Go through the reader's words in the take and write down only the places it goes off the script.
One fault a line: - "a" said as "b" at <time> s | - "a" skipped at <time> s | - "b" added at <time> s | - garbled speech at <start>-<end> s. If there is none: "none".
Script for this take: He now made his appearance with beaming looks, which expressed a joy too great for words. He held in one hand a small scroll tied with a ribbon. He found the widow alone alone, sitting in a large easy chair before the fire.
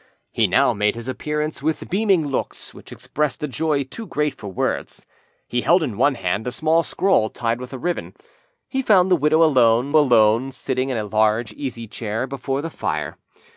none